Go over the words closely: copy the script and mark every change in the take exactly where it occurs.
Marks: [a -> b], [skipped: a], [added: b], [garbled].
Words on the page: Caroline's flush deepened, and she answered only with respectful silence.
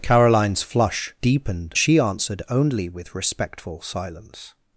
Caroline's flush deepened, [skipped: and] she answered only with respectful silence.